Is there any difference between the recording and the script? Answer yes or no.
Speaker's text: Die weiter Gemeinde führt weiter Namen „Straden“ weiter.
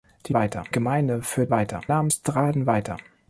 no